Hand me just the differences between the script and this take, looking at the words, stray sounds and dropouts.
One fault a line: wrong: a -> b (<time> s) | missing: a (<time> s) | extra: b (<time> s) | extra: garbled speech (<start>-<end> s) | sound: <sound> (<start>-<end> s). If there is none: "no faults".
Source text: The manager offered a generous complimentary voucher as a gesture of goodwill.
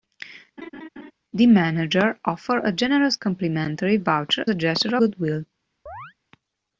sound: laugh (0.6-1.1 s)
missing: as (4.4 s)
missing: of (5.0 s)
sound: chirp (5.9-6.1 s)